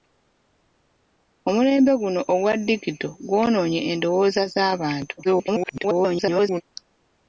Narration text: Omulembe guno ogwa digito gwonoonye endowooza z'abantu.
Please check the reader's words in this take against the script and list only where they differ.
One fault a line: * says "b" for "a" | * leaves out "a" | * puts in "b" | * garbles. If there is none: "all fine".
* garbles